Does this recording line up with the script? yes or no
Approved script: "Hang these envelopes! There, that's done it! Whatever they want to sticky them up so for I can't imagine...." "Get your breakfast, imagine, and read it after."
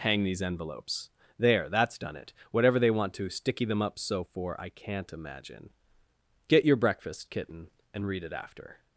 no